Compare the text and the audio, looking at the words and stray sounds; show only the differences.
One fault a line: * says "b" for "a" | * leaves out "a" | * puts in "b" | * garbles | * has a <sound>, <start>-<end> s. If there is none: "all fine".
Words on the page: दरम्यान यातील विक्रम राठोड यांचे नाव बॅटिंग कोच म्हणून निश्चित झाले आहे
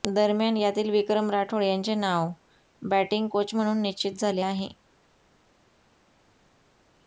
all fine